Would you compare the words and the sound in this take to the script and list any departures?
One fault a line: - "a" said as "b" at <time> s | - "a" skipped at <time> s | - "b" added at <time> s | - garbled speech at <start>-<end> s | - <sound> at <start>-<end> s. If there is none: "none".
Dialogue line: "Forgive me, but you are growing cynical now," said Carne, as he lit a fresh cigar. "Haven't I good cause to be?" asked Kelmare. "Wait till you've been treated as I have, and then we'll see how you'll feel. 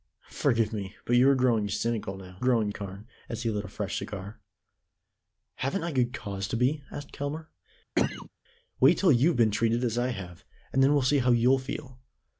- "said" said as "growing" at 2.4 s
- cough at 8.0-8.3 s